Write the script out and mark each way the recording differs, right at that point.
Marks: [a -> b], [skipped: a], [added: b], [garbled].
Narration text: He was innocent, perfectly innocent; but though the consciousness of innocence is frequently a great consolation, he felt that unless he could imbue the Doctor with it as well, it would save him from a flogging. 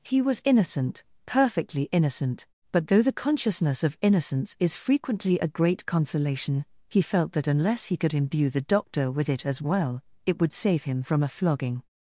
He was innocent, perfectly innocent; but though the consciousness of innocence is frequently a great consolation, he felt that unless he could imbue the Doctor with it as well, it would save him from a flogging.